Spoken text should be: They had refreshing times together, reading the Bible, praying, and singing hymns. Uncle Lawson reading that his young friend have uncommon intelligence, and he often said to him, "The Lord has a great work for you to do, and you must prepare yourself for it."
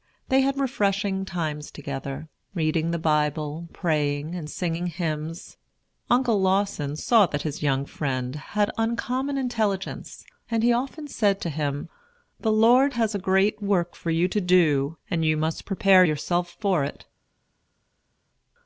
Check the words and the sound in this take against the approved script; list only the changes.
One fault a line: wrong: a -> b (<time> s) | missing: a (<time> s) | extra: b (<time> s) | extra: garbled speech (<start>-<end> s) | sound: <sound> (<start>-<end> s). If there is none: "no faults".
wrong: reading -> saw (7.0 s)
wrong: have -> had (8.3 s)